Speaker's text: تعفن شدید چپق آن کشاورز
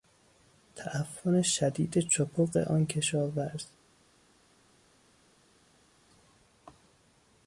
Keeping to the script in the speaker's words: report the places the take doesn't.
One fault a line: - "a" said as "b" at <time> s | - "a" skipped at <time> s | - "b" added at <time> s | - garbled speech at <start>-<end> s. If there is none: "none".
none